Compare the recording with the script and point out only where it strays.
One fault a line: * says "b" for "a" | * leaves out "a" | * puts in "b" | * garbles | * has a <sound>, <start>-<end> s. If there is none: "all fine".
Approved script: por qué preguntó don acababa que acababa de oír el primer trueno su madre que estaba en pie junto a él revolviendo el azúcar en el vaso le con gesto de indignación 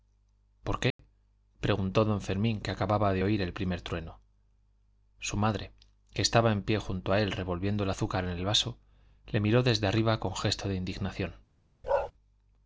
* has a dropout, 0.9-1.0 s
* says "fermín" for "acababa"
* puts in "miró desde arriba"
* has a bark, 11.8-12.1 s